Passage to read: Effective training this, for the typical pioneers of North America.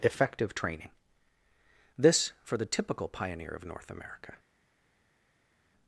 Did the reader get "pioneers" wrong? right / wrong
wrong